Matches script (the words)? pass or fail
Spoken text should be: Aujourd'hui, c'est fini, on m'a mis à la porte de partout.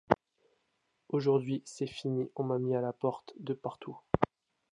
pass